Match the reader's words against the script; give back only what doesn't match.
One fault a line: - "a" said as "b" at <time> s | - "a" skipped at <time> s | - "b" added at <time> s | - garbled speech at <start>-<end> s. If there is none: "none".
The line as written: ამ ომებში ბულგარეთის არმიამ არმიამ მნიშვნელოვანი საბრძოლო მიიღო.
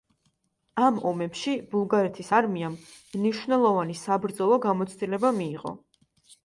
- "არმიამ" skipped at 2.8 s
- "გამოცდილება" added at 4.7 s